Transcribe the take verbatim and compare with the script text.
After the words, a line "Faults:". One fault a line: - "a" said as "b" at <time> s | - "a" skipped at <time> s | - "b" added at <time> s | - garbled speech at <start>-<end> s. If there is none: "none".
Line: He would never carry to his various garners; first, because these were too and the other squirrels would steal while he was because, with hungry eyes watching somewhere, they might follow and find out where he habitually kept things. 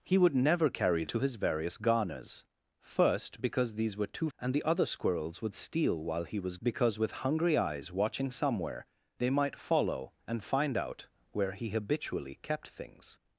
He would never carry to his various garners; first, because these were too and the other squirrels would steal while he was because, with hungry eyes watching somewhere, they might follow and find out where he habitually kept things.
Faults:
none